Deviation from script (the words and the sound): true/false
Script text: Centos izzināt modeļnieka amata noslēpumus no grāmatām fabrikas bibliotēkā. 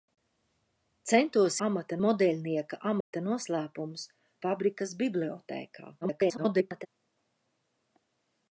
true